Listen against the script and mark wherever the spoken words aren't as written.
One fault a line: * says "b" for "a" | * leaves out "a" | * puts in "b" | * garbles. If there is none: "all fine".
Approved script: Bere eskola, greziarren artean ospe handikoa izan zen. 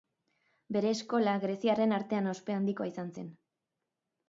all fine